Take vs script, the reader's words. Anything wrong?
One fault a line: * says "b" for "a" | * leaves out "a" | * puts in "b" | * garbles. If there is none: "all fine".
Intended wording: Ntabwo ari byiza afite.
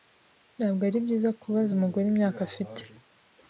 * puts in "kubaza umugore imyaka"